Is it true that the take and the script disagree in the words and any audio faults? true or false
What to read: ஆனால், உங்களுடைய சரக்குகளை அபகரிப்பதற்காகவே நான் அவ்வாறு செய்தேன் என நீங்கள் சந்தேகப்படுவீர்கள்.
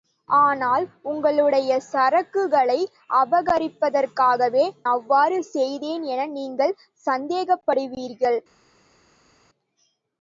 true